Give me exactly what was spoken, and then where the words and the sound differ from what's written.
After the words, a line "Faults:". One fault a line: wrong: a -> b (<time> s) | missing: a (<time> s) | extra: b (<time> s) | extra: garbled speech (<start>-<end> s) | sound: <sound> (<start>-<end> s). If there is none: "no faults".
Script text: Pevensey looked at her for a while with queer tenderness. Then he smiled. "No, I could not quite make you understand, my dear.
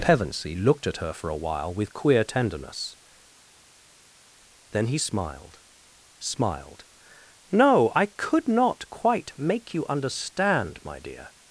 Pevensey looked at her for a while with queer tenderness. Then he smiled smiled. "No, I could not quite make you understand, my dear.
Faults:
extra: smiled (6.2 s)